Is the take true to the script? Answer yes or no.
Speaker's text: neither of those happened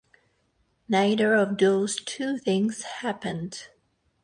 no